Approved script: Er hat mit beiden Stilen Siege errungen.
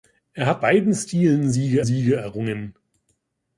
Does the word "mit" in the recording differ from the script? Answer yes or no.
yes